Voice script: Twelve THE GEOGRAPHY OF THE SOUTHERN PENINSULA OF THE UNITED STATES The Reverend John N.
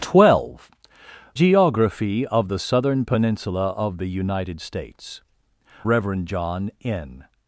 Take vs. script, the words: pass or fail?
fail